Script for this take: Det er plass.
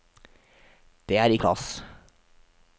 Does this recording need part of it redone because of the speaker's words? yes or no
no